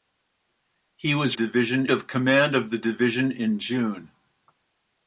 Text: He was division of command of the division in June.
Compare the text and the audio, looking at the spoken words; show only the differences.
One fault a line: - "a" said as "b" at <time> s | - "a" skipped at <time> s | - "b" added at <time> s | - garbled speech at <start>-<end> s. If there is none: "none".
none